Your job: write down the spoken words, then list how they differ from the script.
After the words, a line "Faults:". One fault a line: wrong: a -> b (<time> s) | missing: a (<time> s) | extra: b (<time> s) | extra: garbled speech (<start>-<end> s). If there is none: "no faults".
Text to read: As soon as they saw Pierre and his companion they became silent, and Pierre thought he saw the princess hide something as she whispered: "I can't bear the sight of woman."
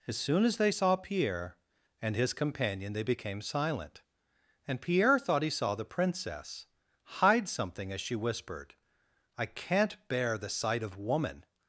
As soon as they saw Pierre and his companion they became silent, and Pierre thought he saw the princess hide something as she whispered: "I can't bear the sight of woman."
Faults:
no faults